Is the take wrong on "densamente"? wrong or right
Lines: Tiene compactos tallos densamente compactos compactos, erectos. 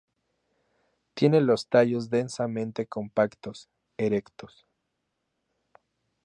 right